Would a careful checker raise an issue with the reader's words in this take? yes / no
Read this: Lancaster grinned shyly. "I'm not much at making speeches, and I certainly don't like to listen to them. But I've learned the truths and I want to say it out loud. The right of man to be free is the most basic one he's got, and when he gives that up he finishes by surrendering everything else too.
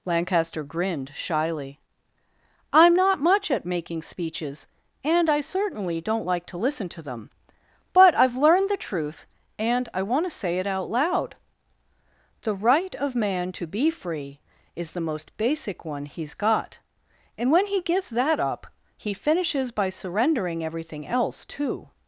yes